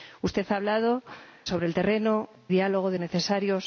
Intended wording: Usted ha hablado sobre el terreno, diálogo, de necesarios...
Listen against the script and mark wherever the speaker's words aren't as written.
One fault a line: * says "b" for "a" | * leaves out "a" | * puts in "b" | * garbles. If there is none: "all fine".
all fine